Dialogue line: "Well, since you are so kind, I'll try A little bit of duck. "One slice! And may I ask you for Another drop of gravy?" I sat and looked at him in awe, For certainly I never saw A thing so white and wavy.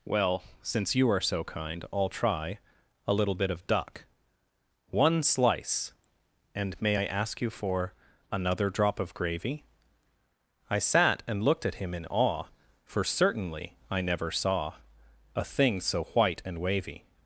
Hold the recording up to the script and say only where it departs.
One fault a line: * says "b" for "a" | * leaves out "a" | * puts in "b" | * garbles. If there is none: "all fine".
all fine